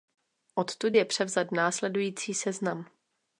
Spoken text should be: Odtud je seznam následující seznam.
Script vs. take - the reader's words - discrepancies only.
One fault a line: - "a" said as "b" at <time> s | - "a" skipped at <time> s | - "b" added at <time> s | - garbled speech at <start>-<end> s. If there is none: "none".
- "seznam" said as "převzat" at 1.0 s